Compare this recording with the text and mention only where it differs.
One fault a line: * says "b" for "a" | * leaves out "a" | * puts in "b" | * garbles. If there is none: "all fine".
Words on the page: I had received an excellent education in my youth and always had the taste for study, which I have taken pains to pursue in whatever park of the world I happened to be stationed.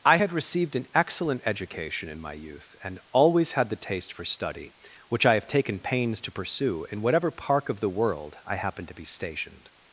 all fine